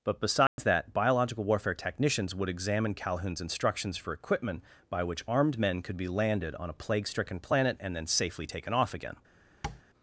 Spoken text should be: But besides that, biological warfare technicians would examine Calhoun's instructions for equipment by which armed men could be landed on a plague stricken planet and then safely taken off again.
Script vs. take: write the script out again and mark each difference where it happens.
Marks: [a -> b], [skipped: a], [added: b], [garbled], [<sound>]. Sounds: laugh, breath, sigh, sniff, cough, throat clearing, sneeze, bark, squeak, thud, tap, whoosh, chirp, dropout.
But besides [dropout] that, biological warfare technicians would examine Calhoun's instructions for equipment by which armed men could be landed on a plague stricken planet and then safely taken off again. [tap]